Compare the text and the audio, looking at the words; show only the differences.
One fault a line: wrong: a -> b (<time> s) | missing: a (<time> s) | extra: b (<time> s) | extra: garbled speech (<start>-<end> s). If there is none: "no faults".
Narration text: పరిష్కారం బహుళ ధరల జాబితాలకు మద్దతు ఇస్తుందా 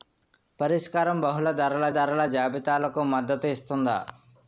extra: ధరల (1.9 s)